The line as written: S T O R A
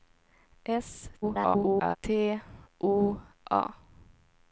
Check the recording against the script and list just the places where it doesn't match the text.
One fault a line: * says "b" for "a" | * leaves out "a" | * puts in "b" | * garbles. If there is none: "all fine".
* garbles
* leaves out "R"